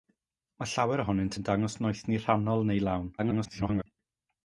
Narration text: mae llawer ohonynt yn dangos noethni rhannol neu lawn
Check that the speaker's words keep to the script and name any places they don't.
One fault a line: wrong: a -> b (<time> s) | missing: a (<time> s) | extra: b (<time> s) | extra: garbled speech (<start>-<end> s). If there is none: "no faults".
extra: garbled speech (3.2-3.8 s)